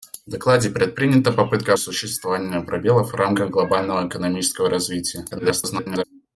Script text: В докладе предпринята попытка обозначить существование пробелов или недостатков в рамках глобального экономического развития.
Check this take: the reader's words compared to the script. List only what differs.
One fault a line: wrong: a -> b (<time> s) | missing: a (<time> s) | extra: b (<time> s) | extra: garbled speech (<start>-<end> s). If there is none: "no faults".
missing: обозначить (1.7 s)
missing: или недостатков (3.1 s)
extra: garbled speech (5.3-6.0 s)